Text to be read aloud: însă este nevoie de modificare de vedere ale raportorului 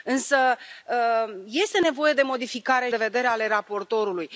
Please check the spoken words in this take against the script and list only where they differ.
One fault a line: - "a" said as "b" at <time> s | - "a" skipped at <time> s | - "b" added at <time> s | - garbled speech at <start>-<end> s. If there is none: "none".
none